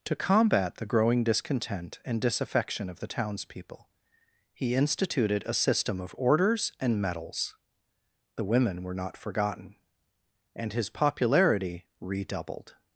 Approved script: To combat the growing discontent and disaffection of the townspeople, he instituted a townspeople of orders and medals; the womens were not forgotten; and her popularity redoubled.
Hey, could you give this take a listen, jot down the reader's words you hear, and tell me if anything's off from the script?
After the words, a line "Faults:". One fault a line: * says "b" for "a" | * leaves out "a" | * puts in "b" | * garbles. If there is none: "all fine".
To combat the growing discontent and disaffection of the townspeople, he instituted a system of orders and medals; the women were not forgotten; and his popularity redoubled.
Faults:
* says "system" for "townspeople"
* says "women" for "womens"
* says "his" for "her"